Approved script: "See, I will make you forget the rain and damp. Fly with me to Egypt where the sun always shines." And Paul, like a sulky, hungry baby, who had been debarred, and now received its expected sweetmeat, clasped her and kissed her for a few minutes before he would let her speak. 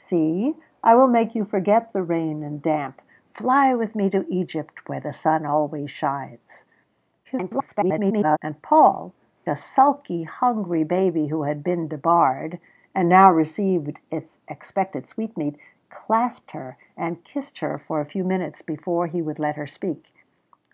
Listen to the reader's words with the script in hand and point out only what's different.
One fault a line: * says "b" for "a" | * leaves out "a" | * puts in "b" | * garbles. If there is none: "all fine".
* garbles
* leaves out "like"